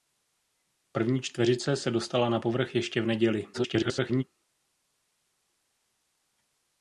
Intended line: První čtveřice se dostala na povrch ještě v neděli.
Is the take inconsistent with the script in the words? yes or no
yes